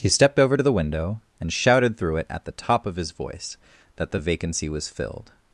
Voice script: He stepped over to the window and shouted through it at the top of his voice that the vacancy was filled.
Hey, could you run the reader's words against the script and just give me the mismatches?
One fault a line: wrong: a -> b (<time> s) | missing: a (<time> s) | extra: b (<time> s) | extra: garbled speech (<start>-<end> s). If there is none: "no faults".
no faults